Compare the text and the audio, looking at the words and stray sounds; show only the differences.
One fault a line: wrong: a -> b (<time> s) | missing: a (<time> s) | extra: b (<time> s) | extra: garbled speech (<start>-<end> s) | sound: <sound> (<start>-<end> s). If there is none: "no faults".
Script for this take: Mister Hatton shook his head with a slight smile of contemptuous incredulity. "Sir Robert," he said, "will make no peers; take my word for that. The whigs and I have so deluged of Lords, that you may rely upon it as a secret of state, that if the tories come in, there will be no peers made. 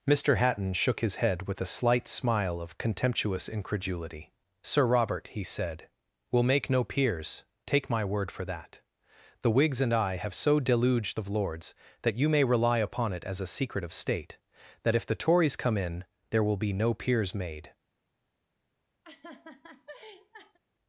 sound: laugh (19.0-20.6 s)